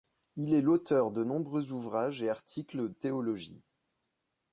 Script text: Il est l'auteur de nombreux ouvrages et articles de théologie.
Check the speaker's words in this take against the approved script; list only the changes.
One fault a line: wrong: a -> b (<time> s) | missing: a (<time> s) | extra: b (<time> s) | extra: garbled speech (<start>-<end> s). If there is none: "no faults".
missing: de (2.9 s)